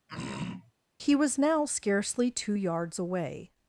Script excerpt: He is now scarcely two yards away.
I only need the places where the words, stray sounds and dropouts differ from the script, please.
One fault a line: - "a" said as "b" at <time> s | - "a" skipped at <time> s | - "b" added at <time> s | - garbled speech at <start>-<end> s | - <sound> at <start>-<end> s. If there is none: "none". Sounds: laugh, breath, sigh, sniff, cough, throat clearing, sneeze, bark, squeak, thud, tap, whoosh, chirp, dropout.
- throat clearing at 0.1-0.7 s
- "is" said as "was" at 1.1 s